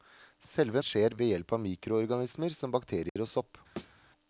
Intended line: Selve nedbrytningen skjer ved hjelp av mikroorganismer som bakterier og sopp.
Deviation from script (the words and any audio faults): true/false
true